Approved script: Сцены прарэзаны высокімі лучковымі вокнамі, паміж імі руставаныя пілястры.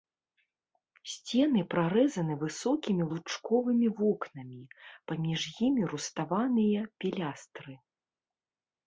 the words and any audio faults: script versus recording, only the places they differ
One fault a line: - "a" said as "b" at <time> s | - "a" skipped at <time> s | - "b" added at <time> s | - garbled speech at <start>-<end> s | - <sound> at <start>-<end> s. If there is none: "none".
none